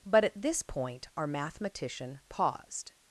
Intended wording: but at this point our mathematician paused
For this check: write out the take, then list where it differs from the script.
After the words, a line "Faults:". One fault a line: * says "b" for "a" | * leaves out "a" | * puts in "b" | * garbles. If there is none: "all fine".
but at this point our mathematician paused
Faults:
all fine